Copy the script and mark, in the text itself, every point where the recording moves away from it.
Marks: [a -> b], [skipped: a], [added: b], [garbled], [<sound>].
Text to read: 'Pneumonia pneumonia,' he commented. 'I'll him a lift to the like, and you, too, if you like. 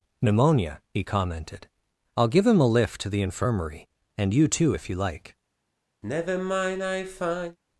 'Pneumonia [skipped: pneumonia,'] he commented. 'I'll [added: give] him a lift to the [like, -> infirmary] and you, too, if you like. [sigh]